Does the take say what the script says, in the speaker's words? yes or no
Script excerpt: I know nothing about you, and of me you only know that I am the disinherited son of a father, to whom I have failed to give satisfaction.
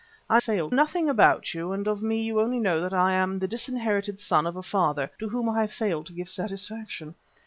no